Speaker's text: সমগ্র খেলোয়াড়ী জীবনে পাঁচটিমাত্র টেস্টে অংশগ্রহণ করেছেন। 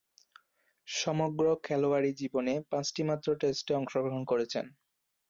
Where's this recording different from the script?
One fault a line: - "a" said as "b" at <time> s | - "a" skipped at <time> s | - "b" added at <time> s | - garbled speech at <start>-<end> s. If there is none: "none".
none